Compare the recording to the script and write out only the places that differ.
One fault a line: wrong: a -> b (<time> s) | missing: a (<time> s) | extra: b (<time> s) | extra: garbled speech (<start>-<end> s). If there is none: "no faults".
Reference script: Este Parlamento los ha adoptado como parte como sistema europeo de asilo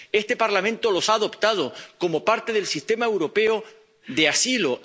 wrong: como -> del (2.5 s)